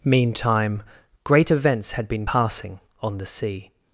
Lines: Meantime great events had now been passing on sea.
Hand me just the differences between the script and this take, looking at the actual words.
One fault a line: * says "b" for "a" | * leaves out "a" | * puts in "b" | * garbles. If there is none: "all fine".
* leaves out "now"
* puts in "the"